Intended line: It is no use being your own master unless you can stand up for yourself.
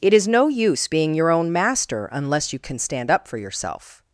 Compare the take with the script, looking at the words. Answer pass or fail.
pass